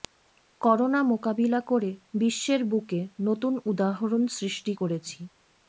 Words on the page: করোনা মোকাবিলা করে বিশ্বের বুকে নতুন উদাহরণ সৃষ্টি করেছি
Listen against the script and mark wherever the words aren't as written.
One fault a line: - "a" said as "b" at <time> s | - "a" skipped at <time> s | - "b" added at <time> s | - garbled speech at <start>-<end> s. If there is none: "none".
none